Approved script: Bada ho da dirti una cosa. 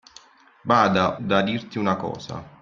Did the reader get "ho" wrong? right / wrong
wrong